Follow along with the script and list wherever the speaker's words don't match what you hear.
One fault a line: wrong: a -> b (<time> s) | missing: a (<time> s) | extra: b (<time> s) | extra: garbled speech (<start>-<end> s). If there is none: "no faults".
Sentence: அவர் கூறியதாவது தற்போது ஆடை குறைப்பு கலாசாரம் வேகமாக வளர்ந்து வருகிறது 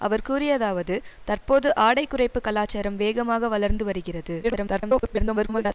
extra: garbled speech (4.4-5.7 s)